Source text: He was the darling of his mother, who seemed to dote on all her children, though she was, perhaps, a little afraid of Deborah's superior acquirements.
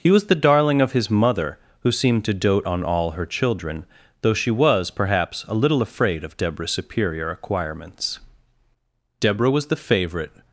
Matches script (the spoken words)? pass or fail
fail